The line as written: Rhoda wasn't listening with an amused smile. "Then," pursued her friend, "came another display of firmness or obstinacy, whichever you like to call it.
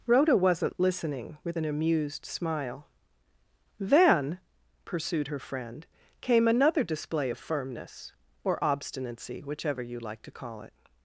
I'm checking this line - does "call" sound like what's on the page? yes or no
yes